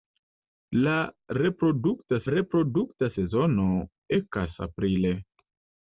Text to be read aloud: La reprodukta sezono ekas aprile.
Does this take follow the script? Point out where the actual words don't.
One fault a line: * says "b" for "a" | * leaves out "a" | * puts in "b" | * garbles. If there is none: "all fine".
* puts in "reprodukta"